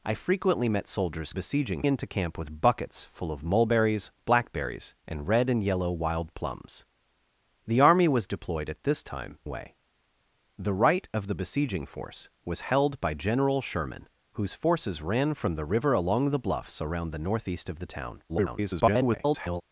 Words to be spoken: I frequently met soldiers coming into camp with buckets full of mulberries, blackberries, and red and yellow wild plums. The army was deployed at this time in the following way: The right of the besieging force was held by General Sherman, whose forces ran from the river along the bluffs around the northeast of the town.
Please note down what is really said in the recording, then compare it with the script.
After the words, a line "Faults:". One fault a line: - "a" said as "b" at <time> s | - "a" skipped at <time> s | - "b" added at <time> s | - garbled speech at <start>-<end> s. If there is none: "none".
I frequently met soldiers besieging into camp with buckets full of mulberries, blackberries, and red and yellow wild plums. The army was deployed at this time way: The right of the besieging force was held by General Sherman, whose forces ran from the river along the bluffs around the northeast of the town. [garbled]
Faults:
- "coming" said as "besieging" at 1.3 s
- "in the following" skipped at 9.4 s
- garbled speech at 18.3-19.6 s